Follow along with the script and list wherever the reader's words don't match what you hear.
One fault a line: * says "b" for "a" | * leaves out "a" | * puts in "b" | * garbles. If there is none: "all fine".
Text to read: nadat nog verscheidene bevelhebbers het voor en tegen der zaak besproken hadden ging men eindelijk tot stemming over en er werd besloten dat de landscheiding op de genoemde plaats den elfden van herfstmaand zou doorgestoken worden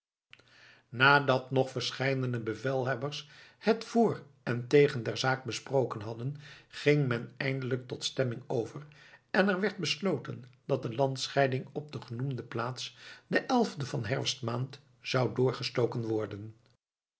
all fine